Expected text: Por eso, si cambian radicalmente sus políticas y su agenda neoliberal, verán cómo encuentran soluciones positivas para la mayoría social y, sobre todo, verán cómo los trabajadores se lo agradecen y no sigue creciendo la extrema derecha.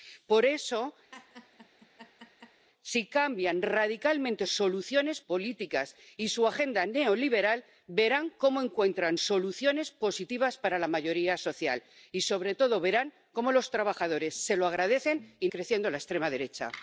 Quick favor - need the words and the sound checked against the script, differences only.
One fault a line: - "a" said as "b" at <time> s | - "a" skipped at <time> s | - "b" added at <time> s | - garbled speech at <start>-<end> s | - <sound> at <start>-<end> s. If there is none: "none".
- laugh at 1.1-2.7 s
- "sus" said as "soluciones" at 4.4 s
- "no sigue" skipped at 15.5 s